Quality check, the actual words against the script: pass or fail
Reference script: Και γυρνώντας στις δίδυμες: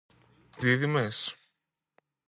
fail